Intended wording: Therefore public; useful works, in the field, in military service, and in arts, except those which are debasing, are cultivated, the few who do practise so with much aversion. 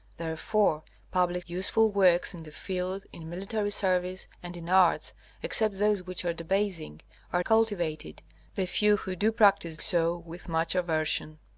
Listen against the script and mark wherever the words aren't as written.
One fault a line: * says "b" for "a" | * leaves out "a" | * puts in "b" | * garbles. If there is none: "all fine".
all fine